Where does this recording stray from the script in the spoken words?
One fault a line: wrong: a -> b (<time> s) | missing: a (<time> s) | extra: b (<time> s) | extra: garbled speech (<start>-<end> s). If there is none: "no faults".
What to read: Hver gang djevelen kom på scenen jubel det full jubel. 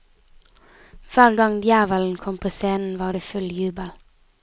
wrong: jubel -> var (3.0 s)